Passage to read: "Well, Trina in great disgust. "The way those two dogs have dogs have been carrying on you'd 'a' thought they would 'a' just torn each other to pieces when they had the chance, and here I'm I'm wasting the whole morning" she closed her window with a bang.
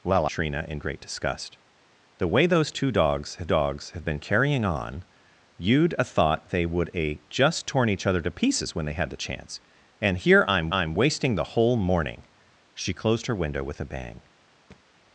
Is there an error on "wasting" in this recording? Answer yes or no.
no